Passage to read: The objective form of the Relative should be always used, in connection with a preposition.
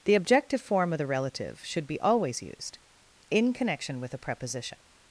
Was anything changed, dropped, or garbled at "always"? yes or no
no